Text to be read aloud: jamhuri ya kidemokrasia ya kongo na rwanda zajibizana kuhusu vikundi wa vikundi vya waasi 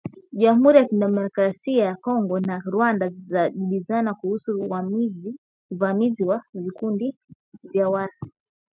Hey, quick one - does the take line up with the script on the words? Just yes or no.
no